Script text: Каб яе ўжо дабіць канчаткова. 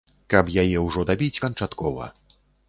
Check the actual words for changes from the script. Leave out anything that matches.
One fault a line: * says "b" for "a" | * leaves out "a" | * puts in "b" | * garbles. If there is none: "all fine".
all fine